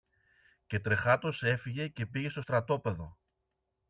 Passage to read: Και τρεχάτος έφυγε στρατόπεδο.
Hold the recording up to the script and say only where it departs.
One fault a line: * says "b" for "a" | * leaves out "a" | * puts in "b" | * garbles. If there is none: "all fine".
* puts in "και πήγε στο"